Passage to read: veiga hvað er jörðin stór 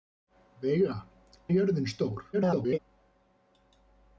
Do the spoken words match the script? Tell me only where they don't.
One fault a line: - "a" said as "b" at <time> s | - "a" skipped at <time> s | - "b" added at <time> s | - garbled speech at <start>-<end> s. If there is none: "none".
- "hvað" skipped at 0.9 s
- garbled speech at 2.3-2.8 s